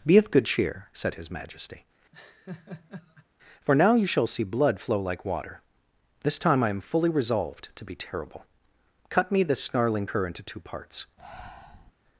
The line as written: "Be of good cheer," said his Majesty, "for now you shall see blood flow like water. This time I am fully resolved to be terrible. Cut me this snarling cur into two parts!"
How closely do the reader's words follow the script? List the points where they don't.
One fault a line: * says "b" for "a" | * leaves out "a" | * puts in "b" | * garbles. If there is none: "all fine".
all fine